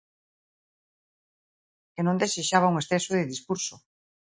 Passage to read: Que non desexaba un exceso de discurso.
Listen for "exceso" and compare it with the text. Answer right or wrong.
right